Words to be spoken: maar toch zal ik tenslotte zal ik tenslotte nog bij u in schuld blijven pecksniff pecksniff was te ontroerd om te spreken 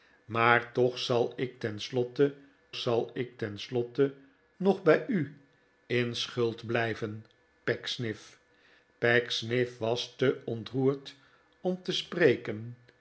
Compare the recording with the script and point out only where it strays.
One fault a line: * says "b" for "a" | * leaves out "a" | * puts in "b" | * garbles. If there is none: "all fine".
all fine